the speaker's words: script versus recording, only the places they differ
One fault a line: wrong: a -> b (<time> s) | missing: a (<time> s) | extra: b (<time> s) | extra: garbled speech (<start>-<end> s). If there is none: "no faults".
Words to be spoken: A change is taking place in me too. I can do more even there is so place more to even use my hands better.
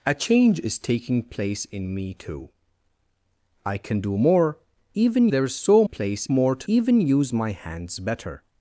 no faults